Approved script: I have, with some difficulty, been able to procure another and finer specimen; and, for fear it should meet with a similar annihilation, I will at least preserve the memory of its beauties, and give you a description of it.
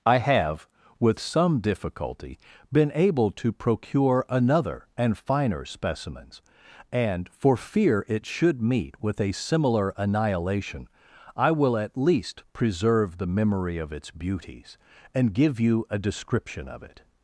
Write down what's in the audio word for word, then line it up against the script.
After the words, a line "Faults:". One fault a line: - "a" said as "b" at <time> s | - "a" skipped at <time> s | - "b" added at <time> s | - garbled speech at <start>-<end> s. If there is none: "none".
I have, with some difficulty, been able to procure another and finer specimens; and, for fear it should meet with a similar annihilation, I will at least preserve the memory of its beauties, and give you a description of it.
Faults:
- "specimen" said as "specimens" at 5.7 s